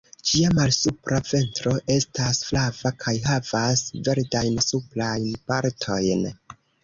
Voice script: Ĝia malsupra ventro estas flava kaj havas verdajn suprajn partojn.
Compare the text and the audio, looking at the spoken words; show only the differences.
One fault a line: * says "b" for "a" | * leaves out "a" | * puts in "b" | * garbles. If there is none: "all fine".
all fine